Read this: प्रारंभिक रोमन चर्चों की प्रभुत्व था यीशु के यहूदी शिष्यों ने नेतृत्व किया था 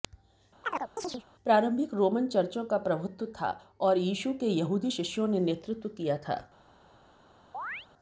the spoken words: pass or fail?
fail